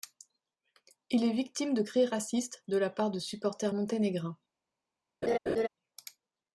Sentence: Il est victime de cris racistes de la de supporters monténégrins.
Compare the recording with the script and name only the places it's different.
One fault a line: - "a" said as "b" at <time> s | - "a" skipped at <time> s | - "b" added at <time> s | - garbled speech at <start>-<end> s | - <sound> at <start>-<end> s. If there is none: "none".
- "part" added at 2.9 s
- laugh at 5.2-5.7 s